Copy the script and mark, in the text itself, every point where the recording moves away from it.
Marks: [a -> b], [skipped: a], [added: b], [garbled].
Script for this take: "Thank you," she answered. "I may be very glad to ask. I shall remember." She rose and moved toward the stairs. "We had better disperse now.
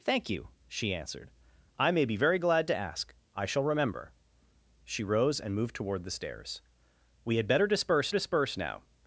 "Thank you," she answered. "I may be very glad to ask. I shall remember." She rose and moved toward the stairs. "We had better disperse [added: disperse] now.